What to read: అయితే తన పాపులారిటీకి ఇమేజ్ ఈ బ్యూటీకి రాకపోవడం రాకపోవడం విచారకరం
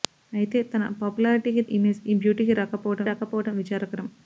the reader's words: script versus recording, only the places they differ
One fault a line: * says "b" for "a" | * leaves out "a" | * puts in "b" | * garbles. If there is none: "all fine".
all fine